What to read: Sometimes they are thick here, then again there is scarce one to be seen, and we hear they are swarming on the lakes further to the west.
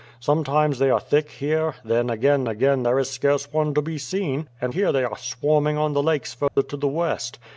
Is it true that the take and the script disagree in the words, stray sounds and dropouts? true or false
true